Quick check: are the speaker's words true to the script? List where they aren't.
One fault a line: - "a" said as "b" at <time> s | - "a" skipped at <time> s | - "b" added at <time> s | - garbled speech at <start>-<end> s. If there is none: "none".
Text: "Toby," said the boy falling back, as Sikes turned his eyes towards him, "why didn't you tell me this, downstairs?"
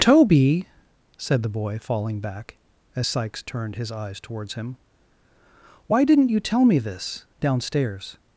none